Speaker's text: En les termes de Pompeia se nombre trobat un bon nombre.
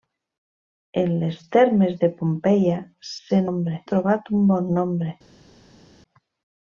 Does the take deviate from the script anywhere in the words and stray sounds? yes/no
no